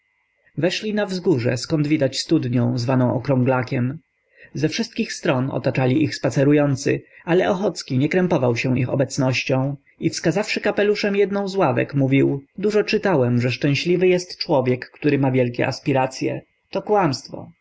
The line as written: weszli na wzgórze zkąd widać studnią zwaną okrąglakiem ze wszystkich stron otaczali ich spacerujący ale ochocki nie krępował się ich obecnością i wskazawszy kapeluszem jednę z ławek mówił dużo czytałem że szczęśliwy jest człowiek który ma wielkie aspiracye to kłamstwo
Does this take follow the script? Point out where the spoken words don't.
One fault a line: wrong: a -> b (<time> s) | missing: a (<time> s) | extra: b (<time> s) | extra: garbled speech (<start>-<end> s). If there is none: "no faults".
no faults